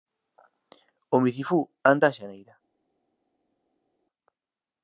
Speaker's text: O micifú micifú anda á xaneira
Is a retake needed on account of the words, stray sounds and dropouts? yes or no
yes